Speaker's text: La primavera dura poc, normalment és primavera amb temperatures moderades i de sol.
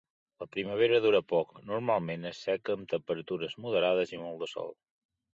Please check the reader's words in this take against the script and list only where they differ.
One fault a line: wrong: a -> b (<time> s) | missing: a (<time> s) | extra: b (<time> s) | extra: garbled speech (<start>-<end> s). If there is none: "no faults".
wrong: primavera -> seca (2.5 s)
extra: molt (4.2 s)